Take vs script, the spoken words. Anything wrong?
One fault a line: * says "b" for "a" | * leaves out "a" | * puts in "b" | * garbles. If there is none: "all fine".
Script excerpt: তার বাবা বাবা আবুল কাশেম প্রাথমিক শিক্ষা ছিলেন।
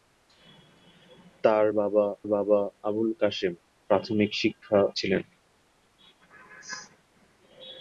all fine